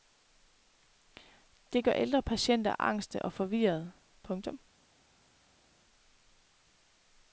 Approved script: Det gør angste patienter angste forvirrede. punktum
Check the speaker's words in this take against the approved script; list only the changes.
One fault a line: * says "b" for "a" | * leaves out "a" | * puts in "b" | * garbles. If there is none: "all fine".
* says "ældre" for "angste"
* puts in "og"